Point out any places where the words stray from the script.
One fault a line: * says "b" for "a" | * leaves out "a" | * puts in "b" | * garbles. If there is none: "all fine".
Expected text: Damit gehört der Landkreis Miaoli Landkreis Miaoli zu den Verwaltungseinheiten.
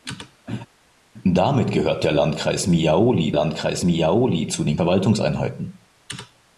all fine